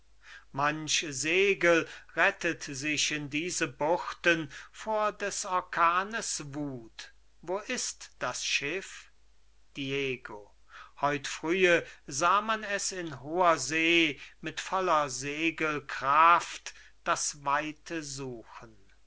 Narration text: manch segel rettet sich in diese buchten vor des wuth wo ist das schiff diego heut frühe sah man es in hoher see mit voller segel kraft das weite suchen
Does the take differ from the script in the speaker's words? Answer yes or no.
yes